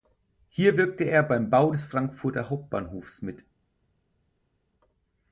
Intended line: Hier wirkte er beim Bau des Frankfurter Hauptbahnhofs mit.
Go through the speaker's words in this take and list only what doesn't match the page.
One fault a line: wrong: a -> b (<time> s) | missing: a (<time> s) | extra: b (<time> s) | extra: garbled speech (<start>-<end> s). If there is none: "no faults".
no faults